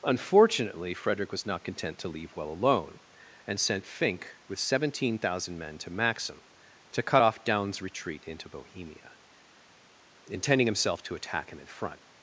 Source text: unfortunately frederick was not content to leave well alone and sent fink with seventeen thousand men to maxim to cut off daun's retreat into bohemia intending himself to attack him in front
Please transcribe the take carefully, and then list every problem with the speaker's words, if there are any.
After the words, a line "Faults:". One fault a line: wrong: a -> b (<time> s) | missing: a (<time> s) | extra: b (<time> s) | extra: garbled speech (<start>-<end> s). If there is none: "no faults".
unfortunately frederick was not content to leave well alone and sent fink with seventeen thousand men to maxim to cut off daun's retreat into bohemia intending himself to attack him in front
Faults:
no faults